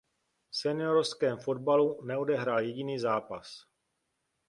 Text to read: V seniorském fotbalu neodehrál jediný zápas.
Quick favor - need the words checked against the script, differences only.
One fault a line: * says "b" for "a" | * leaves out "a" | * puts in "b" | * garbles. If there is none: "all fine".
all fine